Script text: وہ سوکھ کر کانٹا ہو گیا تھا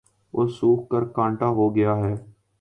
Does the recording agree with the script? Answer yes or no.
no